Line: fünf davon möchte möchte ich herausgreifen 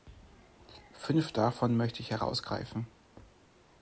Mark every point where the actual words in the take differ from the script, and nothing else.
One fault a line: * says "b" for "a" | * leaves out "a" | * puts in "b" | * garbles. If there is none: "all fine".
* leaves out "möchte"